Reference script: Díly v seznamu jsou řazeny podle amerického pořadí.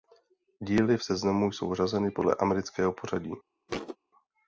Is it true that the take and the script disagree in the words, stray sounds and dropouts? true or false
true